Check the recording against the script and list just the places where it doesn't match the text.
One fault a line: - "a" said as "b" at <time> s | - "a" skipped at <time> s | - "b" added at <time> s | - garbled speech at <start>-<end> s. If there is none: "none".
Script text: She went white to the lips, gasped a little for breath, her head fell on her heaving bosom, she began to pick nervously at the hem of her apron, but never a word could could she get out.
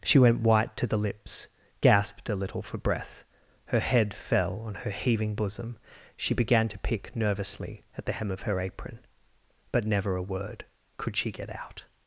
- "could" skipped at 11.2 s